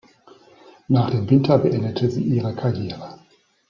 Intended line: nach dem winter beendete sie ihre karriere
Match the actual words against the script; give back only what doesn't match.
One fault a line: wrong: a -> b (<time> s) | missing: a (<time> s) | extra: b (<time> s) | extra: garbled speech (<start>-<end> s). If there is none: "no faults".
no faults